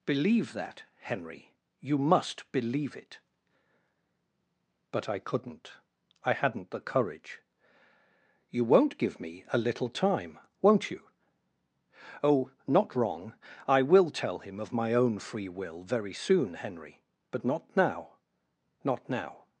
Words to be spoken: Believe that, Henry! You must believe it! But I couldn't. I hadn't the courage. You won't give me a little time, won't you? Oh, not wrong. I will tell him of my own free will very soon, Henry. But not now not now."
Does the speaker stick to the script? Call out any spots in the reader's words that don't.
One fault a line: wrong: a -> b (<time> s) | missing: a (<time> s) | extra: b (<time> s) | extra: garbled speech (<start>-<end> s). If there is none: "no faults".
no faults